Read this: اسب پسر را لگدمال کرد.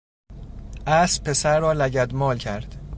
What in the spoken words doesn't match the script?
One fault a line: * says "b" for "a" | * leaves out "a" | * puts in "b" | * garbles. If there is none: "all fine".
all fine